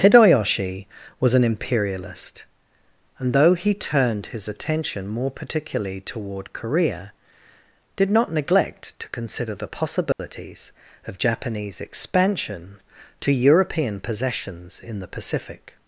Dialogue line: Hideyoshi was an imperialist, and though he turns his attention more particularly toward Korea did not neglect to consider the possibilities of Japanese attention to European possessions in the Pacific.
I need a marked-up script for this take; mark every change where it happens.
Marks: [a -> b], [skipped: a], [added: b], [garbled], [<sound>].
Hideyoshi was an imperialist, and though he [turns -> turned] his attention more particularly toward Korea did not neglect to consider the possibilities [dropout] of Japanese [attention -> expansion] to European possessions in the Pacific.